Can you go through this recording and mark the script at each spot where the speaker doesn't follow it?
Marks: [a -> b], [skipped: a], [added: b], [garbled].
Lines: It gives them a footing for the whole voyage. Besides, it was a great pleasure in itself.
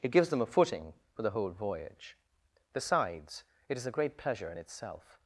It gives them a footing for the whole voyage. Besides, it [was -> is] a great pleasure in itself.